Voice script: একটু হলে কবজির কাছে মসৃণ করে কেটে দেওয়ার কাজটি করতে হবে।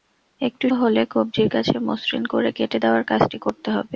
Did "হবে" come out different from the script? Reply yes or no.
no